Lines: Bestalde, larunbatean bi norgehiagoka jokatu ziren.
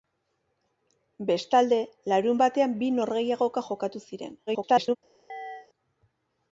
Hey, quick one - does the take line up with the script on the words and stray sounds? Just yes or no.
no